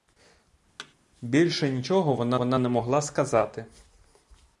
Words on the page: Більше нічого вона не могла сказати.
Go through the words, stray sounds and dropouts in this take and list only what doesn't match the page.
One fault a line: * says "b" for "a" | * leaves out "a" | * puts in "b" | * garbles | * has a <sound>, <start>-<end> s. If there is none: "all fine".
* has a thud, 0.8-0.9 s
* puts in "вона"